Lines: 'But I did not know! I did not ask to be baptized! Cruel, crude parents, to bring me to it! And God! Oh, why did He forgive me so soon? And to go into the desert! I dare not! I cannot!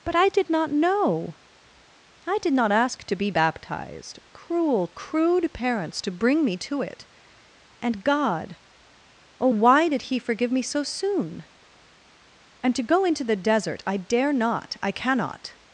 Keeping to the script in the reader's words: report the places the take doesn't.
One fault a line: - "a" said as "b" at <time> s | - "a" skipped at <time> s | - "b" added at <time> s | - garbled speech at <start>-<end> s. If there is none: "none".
none